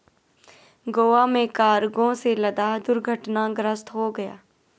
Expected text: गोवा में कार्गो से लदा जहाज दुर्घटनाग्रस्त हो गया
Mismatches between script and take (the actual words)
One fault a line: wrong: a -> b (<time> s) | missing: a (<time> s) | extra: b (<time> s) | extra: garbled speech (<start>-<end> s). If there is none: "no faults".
missing: जहाज (2.8 s)